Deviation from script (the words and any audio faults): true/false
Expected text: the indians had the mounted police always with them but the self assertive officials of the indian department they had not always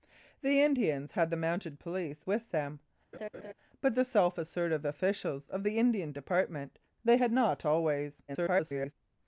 true